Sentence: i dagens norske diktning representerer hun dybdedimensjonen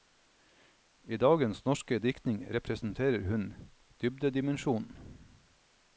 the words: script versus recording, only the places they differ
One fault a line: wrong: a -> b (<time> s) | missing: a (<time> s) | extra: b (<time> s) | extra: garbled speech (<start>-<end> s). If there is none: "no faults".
no faults